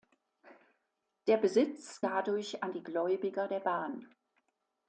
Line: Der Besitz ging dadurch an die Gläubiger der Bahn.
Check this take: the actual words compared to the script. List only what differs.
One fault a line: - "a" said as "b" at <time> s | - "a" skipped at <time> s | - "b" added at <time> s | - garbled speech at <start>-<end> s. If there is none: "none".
- "ging" skipped at 2.0 s